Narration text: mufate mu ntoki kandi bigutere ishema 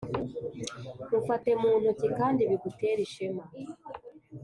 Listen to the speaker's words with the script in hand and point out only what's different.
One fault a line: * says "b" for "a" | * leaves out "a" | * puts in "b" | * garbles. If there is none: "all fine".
all fine